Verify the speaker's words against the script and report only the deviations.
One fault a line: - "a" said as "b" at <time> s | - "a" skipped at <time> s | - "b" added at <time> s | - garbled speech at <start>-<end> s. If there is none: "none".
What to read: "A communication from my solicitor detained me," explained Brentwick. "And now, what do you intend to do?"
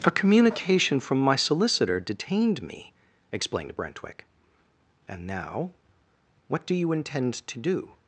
none